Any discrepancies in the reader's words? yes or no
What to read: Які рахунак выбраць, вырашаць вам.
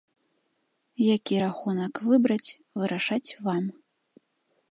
no